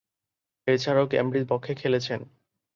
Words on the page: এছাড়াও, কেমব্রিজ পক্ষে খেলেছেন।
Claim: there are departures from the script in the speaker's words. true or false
false